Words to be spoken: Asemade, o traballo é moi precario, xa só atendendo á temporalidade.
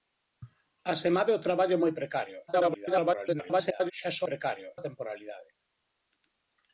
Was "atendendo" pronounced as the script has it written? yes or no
no